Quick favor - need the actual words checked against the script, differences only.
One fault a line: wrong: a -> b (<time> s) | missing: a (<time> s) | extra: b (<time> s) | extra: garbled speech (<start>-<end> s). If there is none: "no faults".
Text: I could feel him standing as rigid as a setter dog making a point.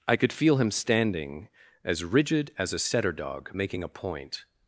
no faults